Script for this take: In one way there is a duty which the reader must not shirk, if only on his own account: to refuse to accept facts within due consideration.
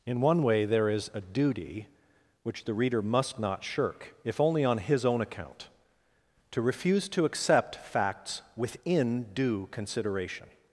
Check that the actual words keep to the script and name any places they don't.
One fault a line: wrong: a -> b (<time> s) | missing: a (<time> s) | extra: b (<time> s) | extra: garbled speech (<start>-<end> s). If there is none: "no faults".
no faults